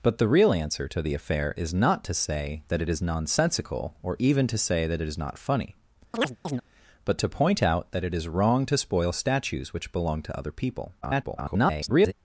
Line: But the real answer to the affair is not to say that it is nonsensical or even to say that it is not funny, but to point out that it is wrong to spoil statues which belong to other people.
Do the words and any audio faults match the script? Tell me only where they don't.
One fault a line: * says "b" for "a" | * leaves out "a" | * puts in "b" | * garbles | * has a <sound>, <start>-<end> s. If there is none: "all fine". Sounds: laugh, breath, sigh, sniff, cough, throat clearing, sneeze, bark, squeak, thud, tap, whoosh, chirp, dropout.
* has a chirp, 6.1-6.6 s
* garbles